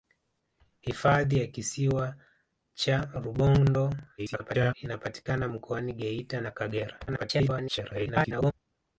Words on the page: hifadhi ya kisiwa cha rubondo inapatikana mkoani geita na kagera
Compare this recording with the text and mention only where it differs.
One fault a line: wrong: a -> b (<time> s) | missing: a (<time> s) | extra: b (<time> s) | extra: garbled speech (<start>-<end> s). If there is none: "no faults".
extra: garbled speech (4.2-4.7 s)
extra: garbled speech (7.1-8.5 s)